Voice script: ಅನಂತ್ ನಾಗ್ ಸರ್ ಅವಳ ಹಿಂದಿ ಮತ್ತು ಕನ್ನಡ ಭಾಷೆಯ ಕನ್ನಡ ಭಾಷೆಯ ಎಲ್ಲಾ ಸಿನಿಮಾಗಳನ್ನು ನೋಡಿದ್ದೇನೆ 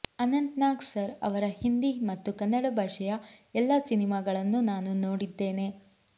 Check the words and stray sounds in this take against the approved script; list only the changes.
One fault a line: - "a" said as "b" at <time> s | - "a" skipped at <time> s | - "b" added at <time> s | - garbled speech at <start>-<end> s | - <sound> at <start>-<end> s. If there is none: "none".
- "ಅವಳ" said as "ಅವರ" at 1.2 s
- "ಕನ್ನಡ ಭಾಷೆಯ" skipped at 3.2 s
- "ನಾನು" added at 4.7 s